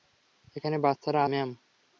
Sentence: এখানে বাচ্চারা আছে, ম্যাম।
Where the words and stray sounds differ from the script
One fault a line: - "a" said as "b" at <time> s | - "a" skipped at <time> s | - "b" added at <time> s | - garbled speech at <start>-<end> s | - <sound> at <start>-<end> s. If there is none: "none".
- "আছে" skipped at 1.2 s